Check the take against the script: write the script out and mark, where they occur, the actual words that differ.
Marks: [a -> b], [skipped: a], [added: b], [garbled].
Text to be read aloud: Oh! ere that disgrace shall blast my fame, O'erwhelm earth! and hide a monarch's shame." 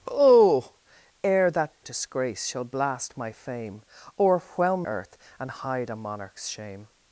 Oh! ere that disgrace shall blast my fame, O'erwhelm earth! and hide a monarch's shame."